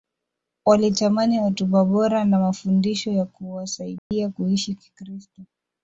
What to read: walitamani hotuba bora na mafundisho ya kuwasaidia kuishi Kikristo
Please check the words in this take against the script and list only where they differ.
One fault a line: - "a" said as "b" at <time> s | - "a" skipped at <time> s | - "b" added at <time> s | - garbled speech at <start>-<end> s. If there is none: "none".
none